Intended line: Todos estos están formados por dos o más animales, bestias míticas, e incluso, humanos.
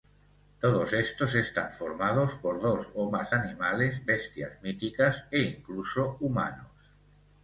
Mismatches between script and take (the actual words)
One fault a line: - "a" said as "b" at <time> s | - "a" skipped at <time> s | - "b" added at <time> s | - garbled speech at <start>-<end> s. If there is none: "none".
none